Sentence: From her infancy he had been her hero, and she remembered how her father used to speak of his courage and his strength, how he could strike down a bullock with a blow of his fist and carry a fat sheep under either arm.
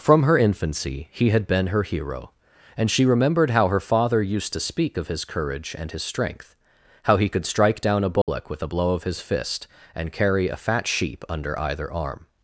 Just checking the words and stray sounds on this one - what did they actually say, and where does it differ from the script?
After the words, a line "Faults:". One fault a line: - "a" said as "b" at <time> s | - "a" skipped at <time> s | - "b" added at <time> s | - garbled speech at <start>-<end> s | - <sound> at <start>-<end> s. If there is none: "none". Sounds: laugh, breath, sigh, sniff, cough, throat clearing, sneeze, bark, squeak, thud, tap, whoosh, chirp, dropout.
From her infancy he had been her hero, and she remembered how her father used to speak of his courage and his strength, how he could strike down a bullock with a blow of his fist and carry a fat sheep under either arm.
Faults:
- dropout at 8.2-8.3 s